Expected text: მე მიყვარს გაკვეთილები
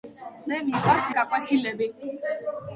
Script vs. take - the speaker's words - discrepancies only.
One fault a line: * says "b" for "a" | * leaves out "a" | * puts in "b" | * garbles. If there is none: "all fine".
all fine